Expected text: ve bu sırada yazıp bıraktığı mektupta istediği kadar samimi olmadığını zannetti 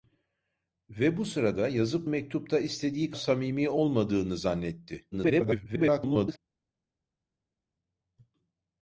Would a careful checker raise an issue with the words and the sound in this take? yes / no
yes